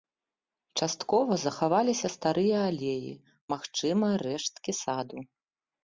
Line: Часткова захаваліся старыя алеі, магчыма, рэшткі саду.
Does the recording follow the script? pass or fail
pass